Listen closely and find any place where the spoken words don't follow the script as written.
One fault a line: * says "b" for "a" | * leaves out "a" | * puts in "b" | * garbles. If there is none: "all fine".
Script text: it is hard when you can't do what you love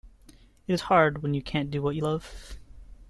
all fine